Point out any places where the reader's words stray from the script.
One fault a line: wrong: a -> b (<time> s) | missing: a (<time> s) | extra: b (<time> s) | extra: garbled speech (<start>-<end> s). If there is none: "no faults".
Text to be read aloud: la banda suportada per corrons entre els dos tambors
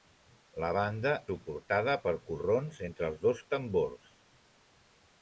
no faults